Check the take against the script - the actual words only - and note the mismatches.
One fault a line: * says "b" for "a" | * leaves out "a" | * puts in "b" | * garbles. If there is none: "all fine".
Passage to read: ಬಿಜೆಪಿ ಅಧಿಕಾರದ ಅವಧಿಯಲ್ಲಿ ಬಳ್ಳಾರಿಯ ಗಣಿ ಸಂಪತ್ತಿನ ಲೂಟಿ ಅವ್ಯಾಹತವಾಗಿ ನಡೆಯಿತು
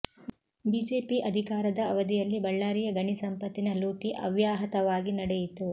all fine